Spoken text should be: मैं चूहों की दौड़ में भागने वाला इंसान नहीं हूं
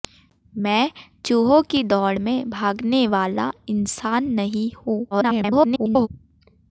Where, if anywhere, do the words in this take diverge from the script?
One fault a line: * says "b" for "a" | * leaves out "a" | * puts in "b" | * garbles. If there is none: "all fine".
* garbles